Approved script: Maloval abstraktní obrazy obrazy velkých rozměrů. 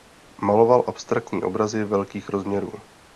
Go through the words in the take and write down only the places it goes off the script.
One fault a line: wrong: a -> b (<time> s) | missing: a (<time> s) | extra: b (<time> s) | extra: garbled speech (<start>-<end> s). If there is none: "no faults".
missing: obrazy (1.8 s)